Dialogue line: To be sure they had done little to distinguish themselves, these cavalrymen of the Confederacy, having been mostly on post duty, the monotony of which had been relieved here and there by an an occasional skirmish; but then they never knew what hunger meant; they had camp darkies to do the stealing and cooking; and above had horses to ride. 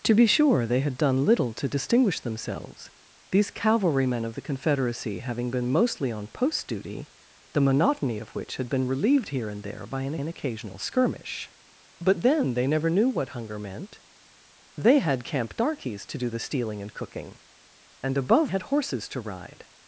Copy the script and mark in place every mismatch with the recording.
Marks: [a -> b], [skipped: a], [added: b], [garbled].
To be sure they had done little to distinguish themselves, these cavalrymen of the Confederacy, having been mostly on post duty, the monotony of which had been relieved here and there by an an occasional skirmish; but then they never knew what hunger meant; they had camp darkies to do the stealing and cooking; and above had horses to ride.